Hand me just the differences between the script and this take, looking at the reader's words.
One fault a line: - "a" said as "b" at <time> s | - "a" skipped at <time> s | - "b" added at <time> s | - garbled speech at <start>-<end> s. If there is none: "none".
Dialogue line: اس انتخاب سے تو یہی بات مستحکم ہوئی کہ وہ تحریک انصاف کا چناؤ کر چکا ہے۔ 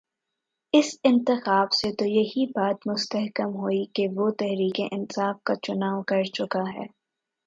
none